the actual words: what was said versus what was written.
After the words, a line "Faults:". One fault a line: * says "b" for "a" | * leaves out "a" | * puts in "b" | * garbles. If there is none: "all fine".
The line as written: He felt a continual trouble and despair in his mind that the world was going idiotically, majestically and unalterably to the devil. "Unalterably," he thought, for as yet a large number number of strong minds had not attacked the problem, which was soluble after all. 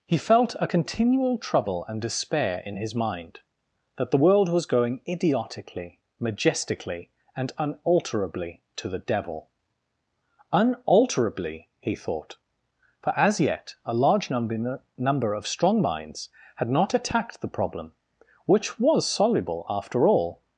He felt a continual trouble and despair in his mind that the world was going idiotically, majestically and unalterably to the devil. "Unalterably," he thought, for as yet a large number number of strong minds had not attacked the problem, which was soluble after all.
Faults:
all fine